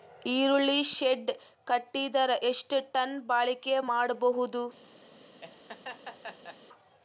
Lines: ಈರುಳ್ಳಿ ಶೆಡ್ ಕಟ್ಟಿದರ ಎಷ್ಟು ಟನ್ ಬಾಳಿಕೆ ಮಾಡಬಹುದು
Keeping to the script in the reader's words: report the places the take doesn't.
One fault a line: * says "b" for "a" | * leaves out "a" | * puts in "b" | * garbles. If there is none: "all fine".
all fine